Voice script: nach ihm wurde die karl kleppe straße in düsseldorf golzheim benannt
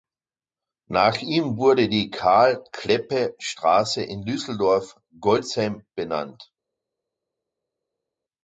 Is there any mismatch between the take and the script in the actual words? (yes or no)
no